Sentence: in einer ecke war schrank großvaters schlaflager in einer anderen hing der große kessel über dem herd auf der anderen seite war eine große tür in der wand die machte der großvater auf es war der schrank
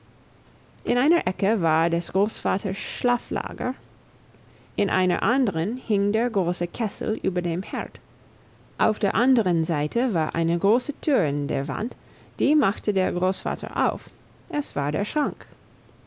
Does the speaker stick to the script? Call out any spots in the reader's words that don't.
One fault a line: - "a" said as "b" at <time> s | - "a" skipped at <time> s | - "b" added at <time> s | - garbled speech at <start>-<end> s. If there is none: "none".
- "schrank" said as "des" at 1.9 s